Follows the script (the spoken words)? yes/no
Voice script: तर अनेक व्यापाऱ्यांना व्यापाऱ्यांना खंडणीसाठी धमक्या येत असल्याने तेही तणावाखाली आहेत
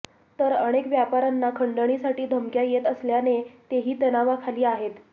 no